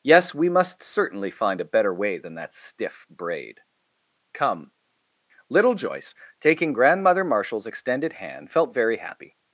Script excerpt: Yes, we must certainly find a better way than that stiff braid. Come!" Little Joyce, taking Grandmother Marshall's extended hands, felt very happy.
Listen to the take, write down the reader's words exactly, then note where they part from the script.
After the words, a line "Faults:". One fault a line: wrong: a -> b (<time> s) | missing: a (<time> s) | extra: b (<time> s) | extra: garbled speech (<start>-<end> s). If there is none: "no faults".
Yes, we must certainly find a better way than that stiff braid. Come!" Little Joyce, taking Grandmother Marshall's extended hand, felt very happy.
Faults:
wrong: hands -> hand (8.1 s)